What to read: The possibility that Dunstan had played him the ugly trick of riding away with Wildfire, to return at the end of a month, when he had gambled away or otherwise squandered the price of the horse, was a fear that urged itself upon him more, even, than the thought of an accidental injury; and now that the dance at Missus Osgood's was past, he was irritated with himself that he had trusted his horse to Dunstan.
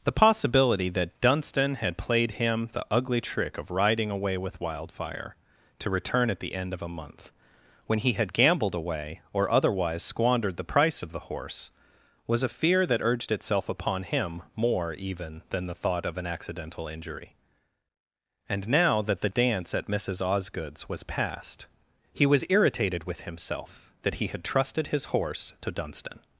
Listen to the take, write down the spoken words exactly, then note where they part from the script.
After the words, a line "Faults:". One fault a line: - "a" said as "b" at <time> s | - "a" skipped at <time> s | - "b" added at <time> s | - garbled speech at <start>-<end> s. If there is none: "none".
The possibility that Dunstan had played him the ugly trick of riding away with Wildfire, to return at the end of a month, when he had gambled away or otherwise squandered the price of the horse, was a fear that urged itself upon him more, even, than the thought of an accidental injury; and now that the dance at Missus Osgood's was past, he was irritated with himself that he had trusted his horse to Dunstan.
Faults:
none